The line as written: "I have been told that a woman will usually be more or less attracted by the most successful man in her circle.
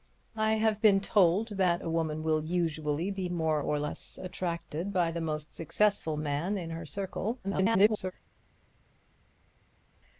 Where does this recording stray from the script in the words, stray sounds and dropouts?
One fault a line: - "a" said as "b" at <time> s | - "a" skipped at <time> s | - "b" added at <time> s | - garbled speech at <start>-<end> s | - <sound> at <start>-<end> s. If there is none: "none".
- garbled speech at 7.4-8.1 s